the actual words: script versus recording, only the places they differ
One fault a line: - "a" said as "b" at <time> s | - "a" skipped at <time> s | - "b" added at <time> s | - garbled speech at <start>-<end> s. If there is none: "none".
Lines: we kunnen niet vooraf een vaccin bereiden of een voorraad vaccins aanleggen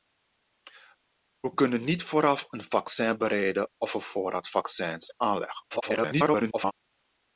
- garbled speech at 5.7-6.7 s